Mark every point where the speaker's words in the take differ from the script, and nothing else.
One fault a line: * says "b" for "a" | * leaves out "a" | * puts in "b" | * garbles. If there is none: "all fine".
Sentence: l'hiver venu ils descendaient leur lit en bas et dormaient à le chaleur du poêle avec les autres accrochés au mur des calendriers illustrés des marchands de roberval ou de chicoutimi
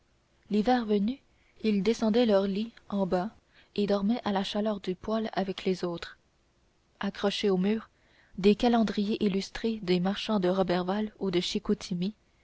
* says "la" for "le"